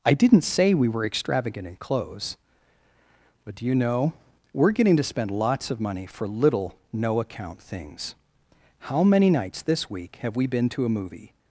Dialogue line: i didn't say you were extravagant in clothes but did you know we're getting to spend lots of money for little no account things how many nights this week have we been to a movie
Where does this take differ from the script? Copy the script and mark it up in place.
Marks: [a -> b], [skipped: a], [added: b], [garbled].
i didn't say [you -> we] were extravagant in clothes but [did -> do] you know we're getting to spend lots of money for little no account things how many nights this week have we been to a movie